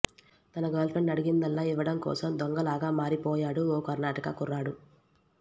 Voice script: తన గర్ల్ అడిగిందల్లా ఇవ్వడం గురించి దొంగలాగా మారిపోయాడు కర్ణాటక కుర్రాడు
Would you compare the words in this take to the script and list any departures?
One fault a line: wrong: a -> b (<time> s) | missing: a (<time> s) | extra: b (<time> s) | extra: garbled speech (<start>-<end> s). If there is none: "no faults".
extra: ఫ్రెండ్ (0.9 s)
wrong: గురించి -> కోసం (2.0 s)
extra: ఓ (3.7 s)